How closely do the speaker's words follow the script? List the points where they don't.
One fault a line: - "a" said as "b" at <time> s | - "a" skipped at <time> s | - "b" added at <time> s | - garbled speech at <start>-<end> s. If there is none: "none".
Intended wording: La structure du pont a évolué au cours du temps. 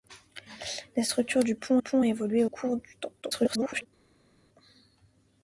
- "pont" added at 1.8 s
- "au" skipped at 2.4 s
- garbled speech at 3.2-3.9 s